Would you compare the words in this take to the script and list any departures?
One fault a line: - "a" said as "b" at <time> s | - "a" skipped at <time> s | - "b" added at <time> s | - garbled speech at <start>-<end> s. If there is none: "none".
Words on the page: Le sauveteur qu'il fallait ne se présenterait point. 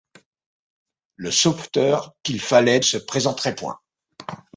- "ne" skipped at 2.8 s